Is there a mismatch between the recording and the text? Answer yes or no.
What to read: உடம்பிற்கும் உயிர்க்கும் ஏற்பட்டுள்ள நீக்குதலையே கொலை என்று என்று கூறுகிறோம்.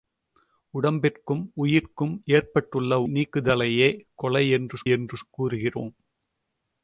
no